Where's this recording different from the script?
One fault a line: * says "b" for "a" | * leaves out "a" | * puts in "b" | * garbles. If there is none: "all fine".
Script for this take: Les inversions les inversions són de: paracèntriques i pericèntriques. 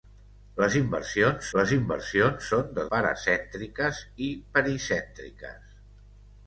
all fine